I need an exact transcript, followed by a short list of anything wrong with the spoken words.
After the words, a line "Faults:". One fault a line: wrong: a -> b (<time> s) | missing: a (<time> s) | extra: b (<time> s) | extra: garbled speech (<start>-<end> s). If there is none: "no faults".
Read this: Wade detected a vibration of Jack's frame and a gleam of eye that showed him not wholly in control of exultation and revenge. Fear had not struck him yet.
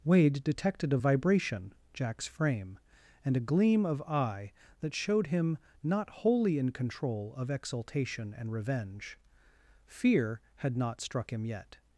Wade detected a vibration Jack's frame and a gleam of eye that showed him not wholly in control of exultation and revenge. Fear had not struck him yet.
Faults:
missing: of (1.7 s)